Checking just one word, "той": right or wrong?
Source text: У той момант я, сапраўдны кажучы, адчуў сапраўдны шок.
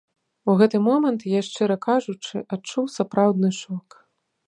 wrong